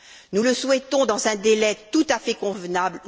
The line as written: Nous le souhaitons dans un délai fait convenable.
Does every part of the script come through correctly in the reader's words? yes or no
no